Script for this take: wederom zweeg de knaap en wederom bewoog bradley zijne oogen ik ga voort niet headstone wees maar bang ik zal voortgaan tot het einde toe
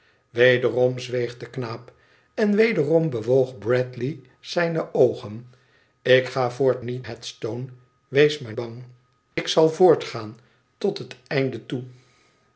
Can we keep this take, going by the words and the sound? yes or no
no